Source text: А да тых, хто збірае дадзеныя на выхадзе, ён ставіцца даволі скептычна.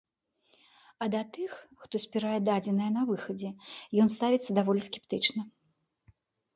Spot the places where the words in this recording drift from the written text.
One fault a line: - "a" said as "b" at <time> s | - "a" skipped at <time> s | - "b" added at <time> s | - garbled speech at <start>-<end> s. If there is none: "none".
none